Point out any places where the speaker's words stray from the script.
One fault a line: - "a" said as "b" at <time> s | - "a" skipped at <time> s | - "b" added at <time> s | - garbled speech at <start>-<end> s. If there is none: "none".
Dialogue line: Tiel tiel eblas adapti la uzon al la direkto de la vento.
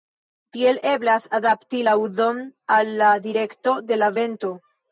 - "tiel" skipped at 0.8 s